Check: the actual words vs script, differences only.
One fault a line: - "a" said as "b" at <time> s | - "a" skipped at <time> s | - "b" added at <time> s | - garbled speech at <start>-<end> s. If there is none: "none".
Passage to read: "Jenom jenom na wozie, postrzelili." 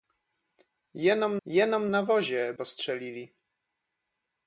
none